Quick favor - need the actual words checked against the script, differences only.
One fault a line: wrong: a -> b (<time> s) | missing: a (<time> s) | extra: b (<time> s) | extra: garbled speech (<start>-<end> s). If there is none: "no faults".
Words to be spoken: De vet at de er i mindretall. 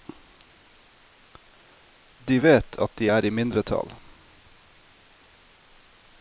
no faults